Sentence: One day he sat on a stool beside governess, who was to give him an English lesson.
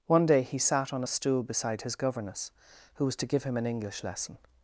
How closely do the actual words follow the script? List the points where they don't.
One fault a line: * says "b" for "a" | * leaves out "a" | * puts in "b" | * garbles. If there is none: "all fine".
* puts in "his"